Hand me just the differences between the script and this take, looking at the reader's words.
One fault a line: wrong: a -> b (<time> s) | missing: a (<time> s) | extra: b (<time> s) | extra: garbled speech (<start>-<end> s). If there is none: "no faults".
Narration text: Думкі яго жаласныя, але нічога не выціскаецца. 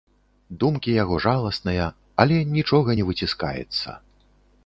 no faults